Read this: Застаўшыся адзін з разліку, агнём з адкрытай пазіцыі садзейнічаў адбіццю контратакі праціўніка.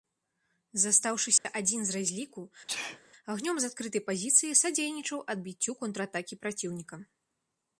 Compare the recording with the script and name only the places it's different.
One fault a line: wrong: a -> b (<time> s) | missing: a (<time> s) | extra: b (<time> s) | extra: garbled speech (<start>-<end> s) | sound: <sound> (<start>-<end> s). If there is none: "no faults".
sound: dropout (1.4-1.4 s)
sound: sneeze (2.7-3.0 s)